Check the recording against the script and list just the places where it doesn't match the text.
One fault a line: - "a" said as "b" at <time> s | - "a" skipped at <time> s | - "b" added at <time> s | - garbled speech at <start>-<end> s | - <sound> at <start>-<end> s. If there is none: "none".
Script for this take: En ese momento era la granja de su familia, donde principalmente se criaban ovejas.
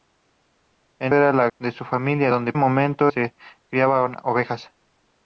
- "ese momento" skipped at 1.1 s
- "granja" skipped at 1.5 s
- "principalmente" said as "momento" at 2.6 s